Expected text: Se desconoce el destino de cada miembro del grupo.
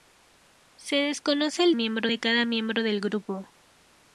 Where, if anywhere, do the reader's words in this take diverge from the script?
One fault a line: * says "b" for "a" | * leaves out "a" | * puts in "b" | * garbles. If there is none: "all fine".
* says "miembro" for "destino"